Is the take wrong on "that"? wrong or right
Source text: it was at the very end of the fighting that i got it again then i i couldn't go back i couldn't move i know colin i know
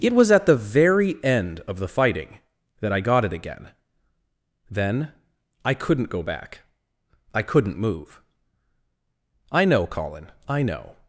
right